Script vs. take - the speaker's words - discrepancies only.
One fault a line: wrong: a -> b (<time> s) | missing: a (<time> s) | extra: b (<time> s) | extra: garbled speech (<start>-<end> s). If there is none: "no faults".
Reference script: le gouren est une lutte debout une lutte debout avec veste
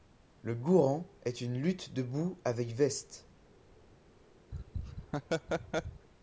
missing: une lutte debout (2.4 s)